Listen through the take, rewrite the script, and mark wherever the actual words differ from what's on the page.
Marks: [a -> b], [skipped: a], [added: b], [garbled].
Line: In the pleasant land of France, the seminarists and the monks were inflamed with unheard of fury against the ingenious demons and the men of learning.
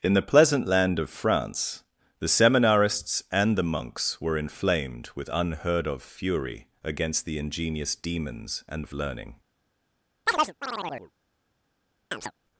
In the pleasant land of France, the seminarists and the monks were inflamed with unheard of fury against the ingenious demons and [skipped: the men] of learning.